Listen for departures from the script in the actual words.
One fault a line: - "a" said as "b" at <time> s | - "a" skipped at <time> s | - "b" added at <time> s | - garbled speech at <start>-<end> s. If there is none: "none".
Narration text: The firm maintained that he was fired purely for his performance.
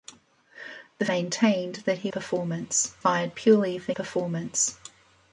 - "firm" skipped at 1.1 s
- "was" said as "performance" at 2.1 s
- "his" skipped at 3.9 s